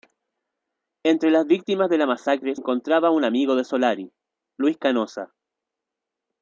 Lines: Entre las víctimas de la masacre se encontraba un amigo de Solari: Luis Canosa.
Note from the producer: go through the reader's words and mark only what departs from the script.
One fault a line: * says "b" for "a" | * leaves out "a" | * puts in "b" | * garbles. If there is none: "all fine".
* leaves out "se"